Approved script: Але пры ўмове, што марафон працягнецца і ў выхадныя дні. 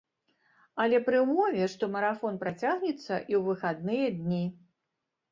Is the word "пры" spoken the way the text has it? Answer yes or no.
yes